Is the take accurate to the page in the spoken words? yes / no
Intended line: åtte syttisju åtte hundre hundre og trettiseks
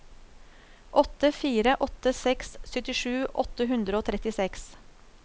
no